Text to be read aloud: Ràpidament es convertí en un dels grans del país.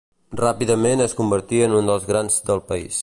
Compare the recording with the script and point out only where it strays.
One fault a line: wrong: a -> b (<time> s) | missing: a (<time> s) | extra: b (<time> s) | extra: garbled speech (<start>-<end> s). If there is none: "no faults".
no faults